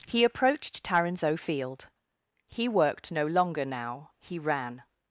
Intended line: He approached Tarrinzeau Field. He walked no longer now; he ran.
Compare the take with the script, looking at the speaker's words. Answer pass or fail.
fail